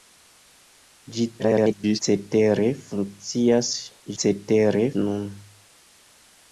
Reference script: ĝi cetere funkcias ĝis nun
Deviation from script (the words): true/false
true